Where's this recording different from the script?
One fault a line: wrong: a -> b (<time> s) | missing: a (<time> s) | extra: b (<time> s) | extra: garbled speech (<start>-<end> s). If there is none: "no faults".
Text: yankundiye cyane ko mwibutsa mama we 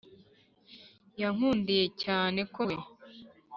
missing: mwibutsa mama (2.6 s)